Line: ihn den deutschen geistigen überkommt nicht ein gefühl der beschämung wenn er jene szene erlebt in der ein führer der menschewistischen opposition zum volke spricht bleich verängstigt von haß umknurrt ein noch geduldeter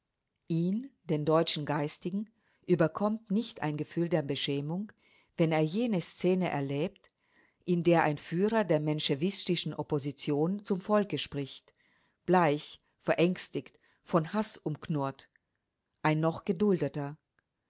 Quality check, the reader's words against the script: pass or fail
pass